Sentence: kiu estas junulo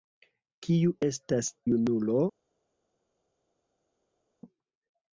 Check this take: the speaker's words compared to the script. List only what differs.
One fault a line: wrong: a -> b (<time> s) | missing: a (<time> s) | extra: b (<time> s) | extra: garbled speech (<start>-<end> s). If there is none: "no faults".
no faults